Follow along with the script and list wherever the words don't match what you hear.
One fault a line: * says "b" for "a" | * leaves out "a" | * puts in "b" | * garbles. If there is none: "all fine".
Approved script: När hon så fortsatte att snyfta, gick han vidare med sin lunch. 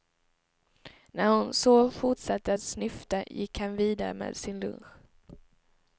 all fine